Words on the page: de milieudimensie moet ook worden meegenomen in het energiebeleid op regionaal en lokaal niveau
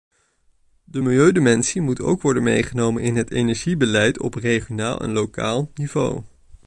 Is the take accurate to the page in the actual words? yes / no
yes